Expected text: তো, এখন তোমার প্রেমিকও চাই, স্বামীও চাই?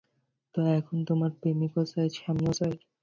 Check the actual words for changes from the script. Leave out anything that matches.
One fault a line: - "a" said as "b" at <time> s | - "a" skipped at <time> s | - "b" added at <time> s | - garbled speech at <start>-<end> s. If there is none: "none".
none